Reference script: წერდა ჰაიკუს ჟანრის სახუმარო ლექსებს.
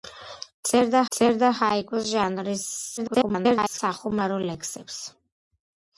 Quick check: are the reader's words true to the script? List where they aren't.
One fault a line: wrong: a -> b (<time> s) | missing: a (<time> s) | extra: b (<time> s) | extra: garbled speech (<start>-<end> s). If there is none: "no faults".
extra: წერდა (1.2 s)
extra: garbled speech (3.0-3.8 s)